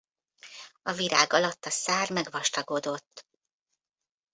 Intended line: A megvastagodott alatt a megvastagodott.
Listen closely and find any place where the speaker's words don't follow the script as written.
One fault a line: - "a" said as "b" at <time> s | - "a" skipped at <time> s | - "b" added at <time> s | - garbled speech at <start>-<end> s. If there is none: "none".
- "megvastagodott" said as "virág" at 0.9 s
- "szár" added at 1.7 s